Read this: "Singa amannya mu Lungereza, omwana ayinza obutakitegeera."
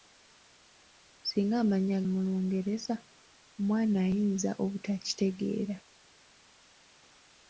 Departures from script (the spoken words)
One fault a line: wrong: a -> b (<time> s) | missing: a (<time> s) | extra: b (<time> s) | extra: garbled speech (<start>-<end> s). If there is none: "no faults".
no faults